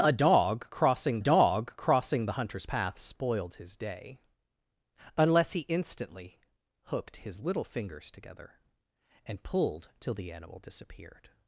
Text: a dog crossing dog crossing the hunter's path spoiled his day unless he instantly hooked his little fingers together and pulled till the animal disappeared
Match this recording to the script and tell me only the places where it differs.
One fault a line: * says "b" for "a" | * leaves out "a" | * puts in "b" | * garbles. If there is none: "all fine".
all fine